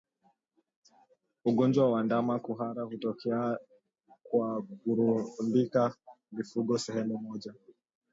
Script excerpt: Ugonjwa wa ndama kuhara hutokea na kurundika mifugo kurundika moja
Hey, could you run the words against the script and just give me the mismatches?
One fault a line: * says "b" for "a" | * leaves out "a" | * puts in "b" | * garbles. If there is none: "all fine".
* says "kwa" for "na"
* says "sehemu" for "kurundika"